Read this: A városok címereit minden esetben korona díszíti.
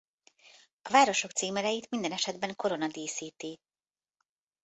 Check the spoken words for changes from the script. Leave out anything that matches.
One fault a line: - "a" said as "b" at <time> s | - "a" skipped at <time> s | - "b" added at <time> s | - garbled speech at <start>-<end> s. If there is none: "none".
none